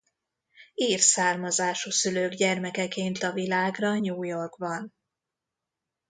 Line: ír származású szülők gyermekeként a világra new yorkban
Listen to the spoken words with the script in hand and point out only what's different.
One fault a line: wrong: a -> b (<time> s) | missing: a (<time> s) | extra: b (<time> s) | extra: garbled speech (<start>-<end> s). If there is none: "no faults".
no faults